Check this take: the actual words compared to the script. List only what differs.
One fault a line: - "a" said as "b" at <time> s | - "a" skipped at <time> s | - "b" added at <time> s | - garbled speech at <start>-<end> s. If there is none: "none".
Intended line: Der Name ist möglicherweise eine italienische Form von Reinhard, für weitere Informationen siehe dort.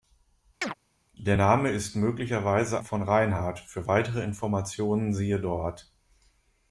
- "eine italienische Form" skipped at 2.8 s